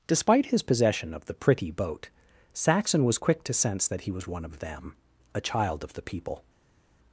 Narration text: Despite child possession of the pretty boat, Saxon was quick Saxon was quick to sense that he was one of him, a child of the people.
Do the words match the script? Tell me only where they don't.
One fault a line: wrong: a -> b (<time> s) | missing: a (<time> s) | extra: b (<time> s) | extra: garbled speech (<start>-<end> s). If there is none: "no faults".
wrong: child -> his (0.5 s)
missing: Saxon was quick (3.4 s)
wrong: him -> them (4.6 s)